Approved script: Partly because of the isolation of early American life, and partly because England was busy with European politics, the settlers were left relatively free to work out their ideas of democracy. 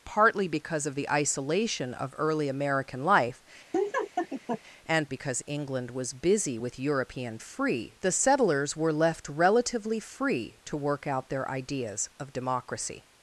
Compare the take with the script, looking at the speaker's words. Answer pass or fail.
fail